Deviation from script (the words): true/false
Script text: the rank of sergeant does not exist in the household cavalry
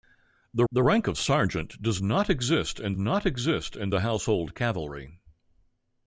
true